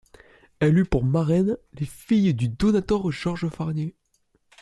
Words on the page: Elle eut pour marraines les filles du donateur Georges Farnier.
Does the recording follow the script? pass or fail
pass